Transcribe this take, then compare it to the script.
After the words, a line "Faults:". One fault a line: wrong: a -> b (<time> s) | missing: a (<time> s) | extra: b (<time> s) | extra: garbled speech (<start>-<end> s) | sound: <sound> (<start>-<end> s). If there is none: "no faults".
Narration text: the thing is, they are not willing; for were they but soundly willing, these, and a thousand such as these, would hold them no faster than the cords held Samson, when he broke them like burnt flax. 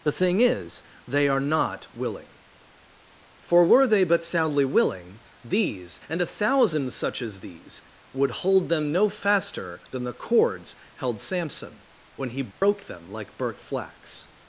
the thing is, they are not willing; for were they but soundly willing, these, and a thousand such as these, would hold them no faster than the cords held Samson, when he broke them like burnt flax.
Faults:
sound: dropout (12.5-12.6 s)